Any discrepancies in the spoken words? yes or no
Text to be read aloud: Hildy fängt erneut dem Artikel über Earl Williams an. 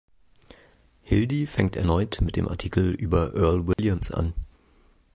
yes